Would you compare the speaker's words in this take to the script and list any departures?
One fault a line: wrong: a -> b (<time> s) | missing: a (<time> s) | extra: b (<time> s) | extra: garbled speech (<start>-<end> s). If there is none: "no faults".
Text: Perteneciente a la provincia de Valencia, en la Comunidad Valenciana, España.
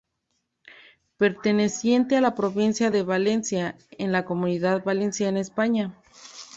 no faults